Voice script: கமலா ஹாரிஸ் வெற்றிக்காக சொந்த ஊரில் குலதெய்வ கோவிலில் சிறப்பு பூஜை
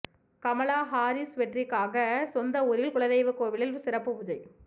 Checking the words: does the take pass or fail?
pass